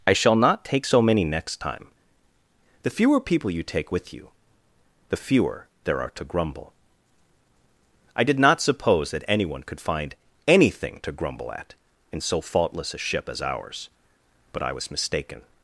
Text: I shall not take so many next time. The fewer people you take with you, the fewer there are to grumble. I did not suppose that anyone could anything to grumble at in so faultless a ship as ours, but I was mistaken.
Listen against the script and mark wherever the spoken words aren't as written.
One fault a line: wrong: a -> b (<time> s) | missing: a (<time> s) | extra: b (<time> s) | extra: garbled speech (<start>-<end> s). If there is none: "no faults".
extra: find (9.8 s)